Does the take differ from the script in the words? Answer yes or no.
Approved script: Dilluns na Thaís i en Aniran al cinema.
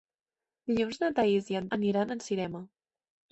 no